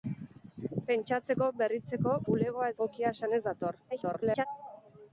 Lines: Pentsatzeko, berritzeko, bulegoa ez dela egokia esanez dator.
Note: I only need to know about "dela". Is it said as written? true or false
false